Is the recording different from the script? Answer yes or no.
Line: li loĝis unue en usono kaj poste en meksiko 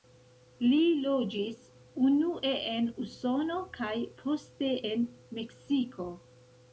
no